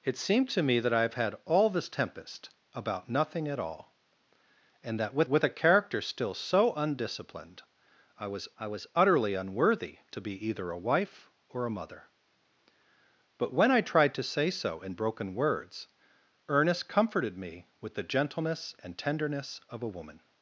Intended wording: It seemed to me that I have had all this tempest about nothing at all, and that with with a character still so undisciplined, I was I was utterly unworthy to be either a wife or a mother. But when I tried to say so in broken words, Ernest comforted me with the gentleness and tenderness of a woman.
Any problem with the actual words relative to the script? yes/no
no